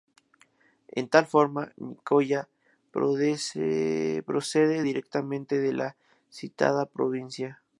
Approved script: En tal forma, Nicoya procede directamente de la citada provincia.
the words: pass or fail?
pass